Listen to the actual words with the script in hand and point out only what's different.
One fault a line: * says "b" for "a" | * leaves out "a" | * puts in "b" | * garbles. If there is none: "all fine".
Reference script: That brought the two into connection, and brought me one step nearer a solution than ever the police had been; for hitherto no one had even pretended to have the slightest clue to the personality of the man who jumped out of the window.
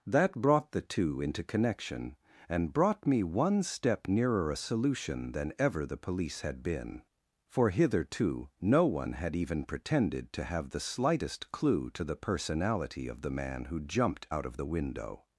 all fine